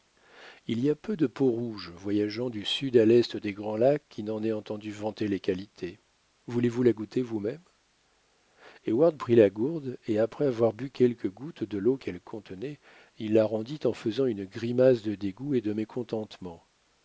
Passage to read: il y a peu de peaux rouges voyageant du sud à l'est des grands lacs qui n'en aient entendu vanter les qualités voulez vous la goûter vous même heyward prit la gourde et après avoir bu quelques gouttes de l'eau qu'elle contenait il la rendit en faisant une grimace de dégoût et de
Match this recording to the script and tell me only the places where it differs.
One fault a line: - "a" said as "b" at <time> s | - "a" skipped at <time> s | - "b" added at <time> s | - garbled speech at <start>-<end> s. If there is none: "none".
none